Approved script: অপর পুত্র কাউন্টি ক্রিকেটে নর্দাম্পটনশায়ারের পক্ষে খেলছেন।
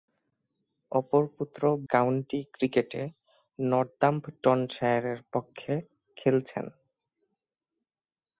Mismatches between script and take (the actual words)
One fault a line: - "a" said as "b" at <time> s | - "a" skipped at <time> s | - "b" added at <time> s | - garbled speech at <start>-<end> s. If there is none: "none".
none